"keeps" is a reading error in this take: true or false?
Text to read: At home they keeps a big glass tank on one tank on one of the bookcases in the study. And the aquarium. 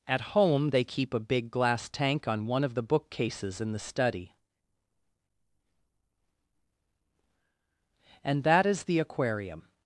true